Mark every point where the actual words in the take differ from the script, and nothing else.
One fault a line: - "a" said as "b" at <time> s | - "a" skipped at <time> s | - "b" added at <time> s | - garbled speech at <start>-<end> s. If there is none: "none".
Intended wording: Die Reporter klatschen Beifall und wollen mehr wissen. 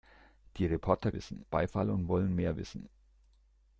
- "klatschen" said as "wissen" at 1.1 s